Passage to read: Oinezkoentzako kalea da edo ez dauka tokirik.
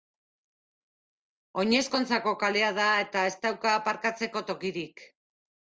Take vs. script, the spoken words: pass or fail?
fail